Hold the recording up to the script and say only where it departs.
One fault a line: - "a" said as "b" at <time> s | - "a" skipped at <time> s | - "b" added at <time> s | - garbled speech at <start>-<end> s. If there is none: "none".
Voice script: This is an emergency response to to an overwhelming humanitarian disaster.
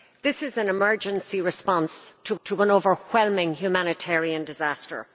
none